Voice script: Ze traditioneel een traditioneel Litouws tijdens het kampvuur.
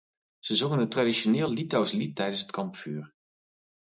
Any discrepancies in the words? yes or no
yes